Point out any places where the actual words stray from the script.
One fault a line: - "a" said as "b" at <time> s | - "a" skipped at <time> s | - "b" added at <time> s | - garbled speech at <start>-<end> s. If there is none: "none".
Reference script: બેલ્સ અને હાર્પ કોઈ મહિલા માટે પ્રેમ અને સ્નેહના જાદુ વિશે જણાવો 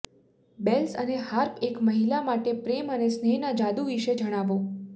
- "કોઈ" said as "એક" at 1.7 s